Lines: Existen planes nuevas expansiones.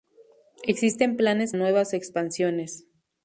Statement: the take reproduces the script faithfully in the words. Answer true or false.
true